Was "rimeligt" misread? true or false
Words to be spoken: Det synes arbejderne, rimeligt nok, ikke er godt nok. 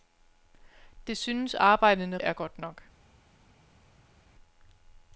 true